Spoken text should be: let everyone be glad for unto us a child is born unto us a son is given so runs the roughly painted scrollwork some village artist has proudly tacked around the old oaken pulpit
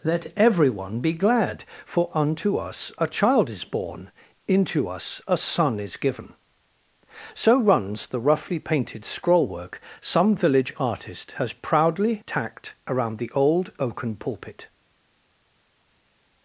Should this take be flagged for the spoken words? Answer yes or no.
yes